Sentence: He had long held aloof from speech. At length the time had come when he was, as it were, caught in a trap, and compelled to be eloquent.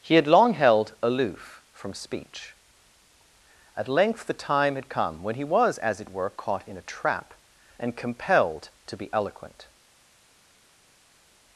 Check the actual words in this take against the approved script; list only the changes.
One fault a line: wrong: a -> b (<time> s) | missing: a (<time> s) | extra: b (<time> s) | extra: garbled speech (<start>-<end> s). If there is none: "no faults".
no faults